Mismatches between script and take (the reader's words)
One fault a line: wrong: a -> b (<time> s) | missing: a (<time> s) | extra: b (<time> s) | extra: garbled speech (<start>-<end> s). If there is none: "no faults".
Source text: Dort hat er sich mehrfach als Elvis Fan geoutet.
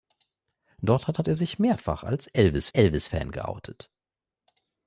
extra: hat (1.2 s)
extra: Elvis (2.7 s)